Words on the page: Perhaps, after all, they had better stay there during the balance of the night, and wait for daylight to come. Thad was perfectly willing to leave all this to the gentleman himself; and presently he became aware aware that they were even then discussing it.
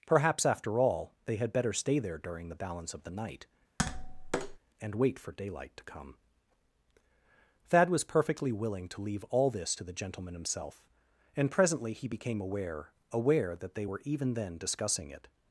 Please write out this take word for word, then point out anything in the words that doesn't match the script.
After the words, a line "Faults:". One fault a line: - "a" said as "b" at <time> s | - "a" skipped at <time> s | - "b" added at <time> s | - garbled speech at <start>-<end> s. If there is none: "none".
Perhaps, after all, they had better stay there during the balance of the night, and wait for daylight to come. Thad was perfectly willing to leave all this to the gentleman himself; and presently he became aware aware that they were even then discussing it.
Faults:
none